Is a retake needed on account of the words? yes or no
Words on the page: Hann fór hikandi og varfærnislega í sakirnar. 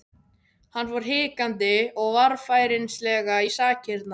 no